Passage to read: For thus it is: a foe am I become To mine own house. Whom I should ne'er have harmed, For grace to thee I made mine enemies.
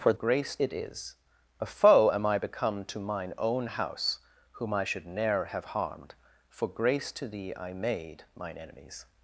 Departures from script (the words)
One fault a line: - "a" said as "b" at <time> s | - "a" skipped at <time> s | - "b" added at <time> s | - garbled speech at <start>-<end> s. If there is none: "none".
- "thus" said as "grace" at 0.1 s